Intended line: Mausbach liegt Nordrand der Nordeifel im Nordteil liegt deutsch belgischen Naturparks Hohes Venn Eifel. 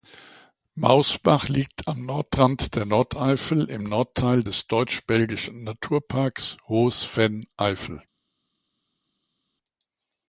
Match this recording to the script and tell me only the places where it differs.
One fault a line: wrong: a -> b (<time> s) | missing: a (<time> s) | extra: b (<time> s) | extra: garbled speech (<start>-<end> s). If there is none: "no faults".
extra: am (1.9 s)
wrong: liegt -> des (4.4 s)